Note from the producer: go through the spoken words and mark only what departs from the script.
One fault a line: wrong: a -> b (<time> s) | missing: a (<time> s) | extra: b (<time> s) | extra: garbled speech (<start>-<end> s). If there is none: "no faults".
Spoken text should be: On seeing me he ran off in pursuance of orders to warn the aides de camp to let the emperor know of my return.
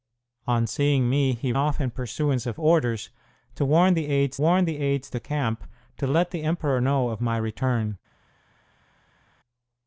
missing: ran (1.5 s)
extra: warn the aides (4.4 s)